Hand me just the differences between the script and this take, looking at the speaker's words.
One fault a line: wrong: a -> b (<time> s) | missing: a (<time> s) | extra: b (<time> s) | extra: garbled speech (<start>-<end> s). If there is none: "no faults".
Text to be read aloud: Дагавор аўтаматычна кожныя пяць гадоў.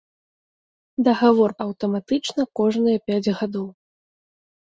no faults